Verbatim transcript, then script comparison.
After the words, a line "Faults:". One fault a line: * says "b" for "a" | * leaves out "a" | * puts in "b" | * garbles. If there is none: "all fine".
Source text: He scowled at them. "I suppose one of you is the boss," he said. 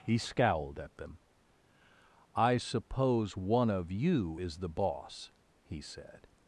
He scowled at them. "I suppose one of you is the boss," he said.
Faults:
all fine